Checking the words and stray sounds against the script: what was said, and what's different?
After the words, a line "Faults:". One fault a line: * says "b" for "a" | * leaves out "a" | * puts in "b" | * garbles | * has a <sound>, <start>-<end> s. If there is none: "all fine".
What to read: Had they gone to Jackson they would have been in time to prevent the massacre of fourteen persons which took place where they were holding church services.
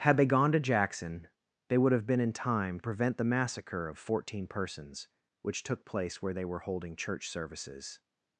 Had they gone to Jackson they would have been in time prevent the massacre of fourteen persons which took place where they were holding church services.
Faults:
* leaves out "to"